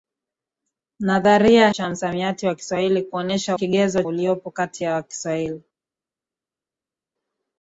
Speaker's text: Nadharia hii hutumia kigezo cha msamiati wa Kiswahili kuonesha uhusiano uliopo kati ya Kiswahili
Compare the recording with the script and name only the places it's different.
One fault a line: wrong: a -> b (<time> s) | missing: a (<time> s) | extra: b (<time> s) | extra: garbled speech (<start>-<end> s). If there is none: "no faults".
missing: hii hutumia kigezo (1.7 s)
wrong: uhusiano -> kigezo (3.5 s)